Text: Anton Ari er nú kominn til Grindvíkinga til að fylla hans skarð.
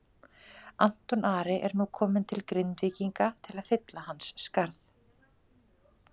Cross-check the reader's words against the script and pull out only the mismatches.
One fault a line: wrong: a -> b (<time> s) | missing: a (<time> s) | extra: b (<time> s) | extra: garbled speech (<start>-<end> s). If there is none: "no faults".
no faults